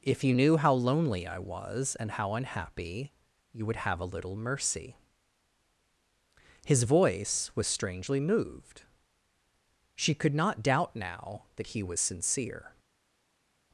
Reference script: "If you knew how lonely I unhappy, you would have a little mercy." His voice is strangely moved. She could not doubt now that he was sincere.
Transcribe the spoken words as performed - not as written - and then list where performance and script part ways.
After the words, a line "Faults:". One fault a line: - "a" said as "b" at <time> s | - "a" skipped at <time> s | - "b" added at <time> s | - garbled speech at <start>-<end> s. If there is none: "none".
"If you knew how lonely I was and how unhappy, you would have a little mercy." His voice was strangely moved. She could not doubt now that he was sincere.
Faults:
- "was and how" added at 1.4 s
- "is" said as "was" at 7.5 s